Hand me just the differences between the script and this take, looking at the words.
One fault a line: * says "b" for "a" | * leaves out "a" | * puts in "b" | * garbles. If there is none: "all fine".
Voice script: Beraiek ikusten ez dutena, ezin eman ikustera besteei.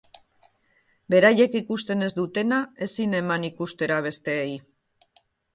all fine